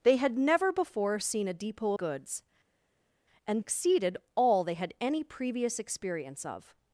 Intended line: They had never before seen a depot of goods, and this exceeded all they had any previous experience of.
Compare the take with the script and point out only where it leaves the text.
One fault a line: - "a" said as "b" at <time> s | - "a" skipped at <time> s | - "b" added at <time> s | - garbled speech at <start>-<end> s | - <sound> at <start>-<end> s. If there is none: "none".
- "of" skipped at 1.9 s
- "this" skipped at 3.6 s